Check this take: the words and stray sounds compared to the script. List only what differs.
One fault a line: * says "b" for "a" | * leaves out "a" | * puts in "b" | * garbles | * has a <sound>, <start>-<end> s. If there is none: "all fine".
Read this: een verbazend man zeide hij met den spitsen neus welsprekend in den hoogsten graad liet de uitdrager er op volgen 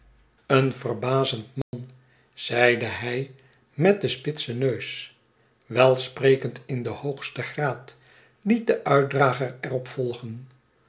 * has a dropout, 1.6-1.7 s